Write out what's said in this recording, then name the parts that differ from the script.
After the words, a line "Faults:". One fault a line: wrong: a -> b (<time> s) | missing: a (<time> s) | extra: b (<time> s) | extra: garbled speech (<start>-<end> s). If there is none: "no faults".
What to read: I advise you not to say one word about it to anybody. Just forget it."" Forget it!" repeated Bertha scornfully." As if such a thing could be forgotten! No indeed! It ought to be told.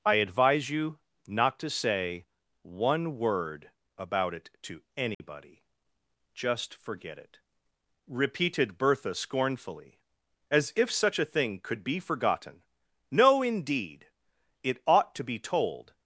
I advise you not to say one word about it to anybody. Just forget it!" repeated Bertha scornfully." As if such a thing could be forgotten! No indeed! It ought to be told.
Faults:
missing: Forget it (7.4 s)